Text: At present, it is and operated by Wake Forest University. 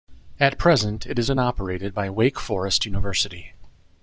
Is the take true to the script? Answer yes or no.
yes